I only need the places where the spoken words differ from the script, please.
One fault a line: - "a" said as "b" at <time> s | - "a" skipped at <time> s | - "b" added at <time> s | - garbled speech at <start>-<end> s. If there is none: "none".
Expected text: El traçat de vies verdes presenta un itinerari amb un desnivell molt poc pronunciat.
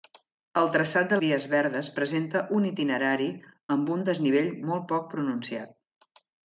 none